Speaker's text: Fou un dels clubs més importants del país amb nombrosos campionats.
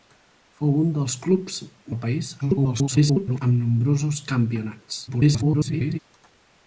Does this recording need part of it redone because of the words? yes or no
yes